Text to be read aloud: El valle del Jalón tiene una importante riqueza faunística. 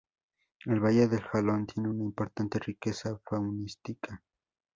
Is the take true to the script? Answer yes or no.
yes